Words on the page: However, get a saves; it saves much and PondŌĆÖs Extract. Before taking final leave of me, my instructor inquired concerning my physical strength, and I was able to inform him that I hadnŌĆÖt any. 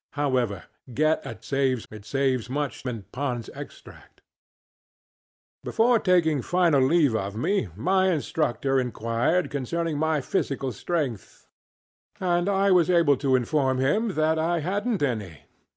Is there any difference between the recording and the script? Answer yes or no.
no